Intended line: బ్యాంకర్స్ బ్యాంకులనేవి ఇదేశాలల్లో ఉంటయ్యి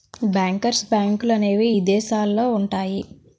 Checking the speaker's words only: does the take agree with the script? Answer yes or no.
yes